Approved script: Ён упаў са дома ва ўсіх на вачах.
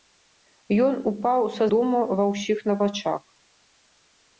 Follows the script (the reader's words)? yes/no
yes